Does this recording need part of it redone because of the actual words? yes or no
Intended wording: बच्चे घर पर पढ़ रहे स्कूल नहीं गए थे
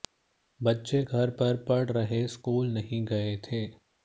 no